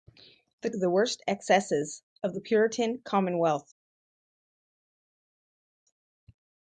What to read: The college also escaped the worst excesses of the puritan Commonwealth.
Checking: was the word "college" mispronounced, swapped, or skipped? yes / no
yes